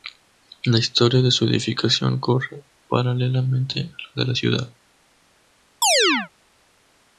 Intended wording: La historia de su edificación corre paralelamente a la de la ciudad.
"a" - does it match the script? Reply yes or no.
yes